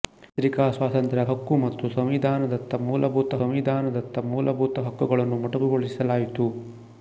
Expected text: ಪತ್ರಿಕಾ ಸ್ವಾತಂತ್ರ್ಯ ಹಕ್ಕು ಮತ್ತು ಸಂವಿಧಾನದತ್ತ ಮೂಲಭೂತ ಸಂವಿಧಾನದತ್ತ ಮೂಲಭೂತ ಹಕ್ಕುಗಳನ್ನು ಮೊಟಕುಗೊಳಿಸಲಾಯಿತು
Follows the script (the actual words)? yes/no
yes